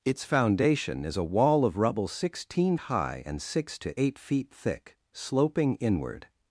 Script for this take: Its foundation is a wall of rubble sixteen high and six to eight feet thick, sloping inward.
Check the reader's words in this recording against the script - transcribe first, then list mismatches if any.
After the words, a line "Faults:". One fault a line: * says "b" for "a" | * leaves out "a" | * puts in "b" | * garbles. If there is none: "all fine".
Its foundation is a wall of rubble sixteen high and six to eight feet thick, sloping inward.
Faults:
all fine